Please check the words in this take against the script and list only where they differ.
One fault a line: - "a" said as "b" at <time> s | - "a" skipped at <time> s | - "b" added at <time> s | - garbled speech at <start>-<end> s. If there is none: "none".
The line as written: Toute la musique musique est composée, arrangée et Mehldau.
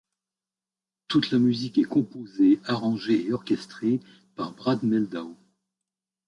- "musique" skipped at 1.8 s
- "orchestrée par Brad" added at 3.3 s